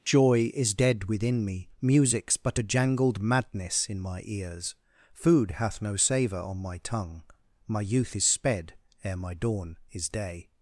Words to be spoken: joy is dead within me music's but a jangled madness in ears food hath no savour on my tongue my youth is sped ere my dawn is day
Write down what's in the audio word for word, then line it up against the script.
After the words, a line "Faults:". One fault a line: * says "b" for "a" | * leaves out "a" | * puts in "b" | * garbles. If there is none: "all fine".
joy is dead within me music's but a jangled madness in my ears food hath no savour on my tongue my youth is sped ere my dawn is day
Faults:
* puts in "my"